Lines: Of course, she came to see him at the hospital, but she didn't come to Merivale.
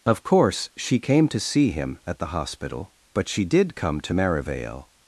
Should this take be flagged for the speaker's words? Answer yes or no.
yes